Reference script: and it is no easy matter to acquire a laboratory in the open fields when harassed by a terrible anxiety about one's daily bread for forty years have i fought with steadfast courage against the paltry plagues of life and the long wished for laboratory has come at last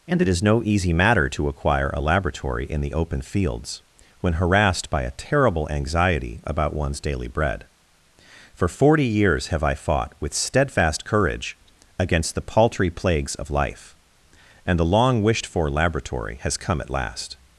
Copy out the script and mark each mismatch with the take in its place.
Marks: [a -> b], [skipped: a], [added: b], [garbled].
and it is no easy matter to acquire a laboratory in the open fields when harassed by a terrible anxiety about one's daily bread for forty years have i fought with steadfast courage against the paltry plagues of life and the long wished for laboratory has come at last